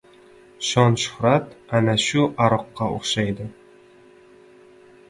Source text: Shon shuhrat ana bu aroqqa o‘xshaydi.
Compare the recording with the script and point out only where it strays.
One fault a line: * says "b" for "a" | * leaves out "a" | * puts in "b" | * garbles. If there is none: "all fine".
* says "shu" for "bu"